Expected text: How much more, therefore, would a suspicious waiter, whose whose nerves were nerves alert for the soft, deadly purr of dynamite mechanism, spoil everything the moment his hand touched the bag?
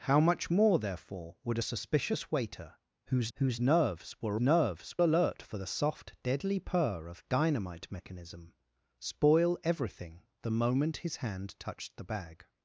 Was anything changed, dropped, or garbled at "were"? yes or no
no